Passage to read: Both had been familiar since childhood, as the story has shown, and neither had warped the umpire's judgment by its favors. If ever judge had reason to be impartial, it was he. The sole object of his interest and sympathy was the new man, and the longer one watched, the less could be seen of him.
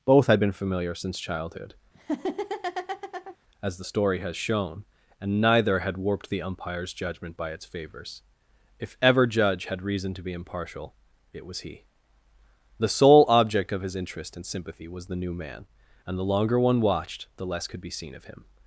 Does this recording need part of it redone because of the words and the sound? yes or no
yes